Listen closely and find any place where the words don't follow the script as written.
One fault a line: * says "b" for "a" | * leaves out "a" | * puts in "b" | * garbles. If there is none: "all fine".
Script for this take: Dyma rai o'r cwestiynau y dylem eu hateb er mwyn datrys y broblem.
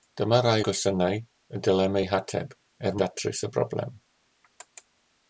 * leaves out "o'r"
* leaves out "mwyn"